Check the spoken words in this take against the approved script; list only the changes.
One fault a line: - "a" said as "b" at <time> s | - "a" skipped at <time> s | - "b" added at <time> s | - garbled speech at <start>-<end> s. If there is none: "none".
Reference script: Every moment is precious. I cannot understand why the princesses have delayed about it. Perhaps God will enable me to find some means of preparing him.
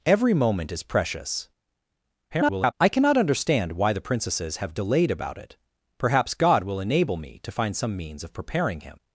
- garbled speech at 2.3-2.7 s